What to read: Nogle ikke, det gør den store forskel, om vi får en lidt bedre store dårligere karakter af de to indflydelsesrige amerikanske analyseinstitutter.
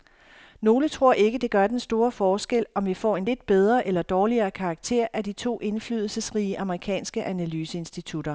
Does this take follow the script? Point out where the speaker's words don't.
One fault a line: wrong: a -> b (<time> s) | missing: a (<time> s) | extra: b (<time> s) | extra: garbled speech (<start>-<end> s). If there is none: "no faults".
extra: tror (0.9 s)
wrong: store -> eller (3.9 s)